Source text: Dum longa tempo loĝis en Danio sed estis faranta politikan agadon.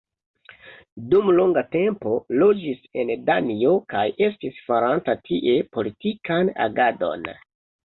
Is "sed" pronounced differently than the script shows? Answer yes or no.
yes